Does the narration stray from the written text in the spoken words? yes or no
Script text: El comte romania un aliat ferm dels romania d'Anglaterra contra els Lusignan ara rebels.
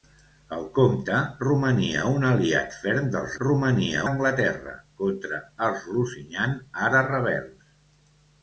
no